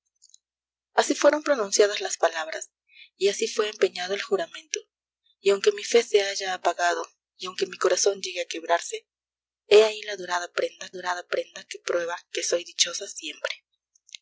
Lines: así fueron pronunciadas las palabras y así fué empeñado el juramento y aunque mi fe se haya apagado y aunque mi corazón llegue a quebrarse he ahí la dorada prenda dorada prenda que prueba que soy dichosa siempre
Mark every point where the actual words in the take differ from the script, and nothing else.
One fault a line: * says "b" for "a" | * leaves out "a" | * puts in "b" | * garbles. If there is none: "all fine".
all fine